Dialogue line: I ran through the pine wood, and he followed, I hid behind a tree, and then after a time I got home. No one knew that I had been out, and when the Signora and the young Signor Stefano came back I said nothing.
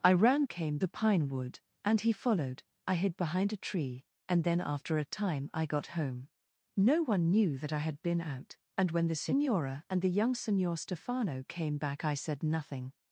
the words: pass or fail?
fail